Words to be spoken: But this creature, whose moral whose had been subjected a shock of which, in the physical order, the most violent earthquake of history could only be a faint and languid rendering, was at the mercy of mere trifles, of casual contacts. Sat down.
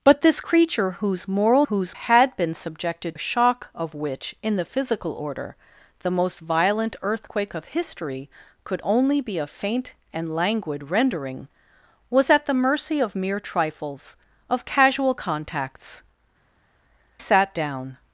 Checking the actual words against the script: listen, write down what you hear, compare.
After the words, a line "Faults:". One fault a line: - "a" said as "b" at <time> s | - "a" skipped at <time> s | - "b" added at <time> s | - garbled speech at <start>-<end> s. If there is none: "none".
But this creature, whose moral whose had been subjected a shock of which, in the physical order, the most violent earthquake of history could only be a faint and languid rendering, was at the mercy of mere trifles, of casual contacts. Sat down.
Faults:
none